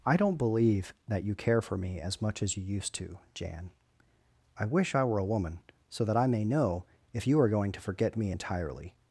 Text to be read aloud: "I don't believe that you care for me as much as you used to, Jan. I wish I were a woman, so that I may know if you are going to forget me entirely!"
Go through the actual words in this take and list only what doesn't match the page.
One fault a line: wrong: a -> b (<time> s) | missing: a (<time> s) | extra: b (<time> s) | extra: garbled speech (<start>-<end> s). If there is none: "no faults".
no faults